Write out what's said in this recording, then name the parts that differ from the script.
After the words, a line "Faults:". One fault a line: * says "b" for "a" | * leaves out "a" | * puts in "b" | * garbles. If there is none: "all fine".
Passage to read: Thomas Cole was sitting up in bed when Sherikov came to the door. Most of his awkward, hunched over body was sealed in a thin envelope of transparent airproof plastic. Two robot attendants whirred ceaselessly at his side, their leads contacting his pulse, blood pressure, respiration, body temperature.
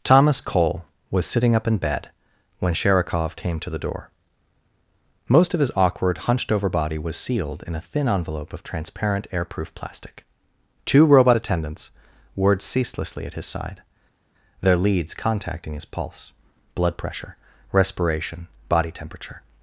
Thomas Cole was sitting up in bed when Sherikov came to the door. Most of his awkward, hunched over body was sealed in a thin envelope of transparent airproof plastic. Two robot attendants whirred ceaselessly at his side, their leads contacting his pulse, blood pressure, respiration, body temperature.
Faults:
all fine